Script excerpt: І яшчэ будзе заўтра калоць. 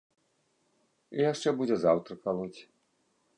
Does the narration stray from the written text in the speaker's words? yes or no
no